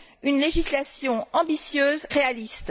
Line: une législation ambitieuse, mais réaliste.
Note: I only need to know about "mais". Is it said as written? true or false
false